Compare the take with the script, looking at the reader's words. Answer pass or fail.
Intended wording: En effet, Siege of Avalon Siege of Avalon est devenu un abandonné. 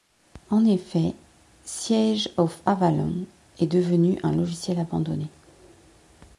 fail